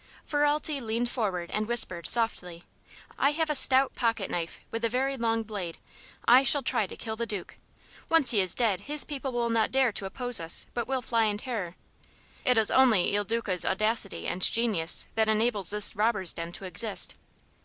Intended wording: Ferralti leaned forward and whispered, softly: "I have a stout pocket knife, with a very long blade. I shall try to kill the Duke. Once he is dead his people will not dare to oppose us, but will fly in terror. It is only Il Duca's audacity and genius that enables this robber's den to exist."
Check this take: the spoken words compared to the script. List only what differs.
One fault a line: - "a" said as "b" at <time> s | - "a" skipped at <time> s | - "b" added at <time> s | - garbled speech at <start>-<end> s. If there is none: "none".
none